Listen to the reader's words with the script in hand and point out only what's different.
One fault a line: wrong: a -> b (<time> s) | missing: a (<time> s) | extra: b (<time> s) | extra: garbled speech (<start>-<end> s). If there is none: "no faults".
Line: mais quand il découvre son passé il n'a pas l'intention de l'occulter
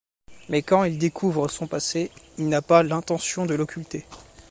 no faults